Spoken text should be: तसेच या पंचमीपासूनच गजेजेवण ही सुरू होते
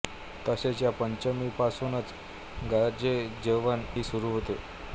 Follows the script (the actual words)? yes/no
yes